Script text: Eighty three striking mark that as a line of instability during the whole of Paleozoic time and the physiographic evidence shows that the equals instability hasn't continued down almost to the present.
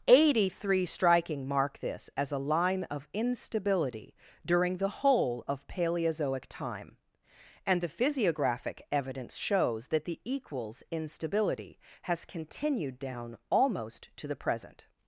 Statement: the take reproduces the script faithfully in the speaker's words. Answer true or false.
false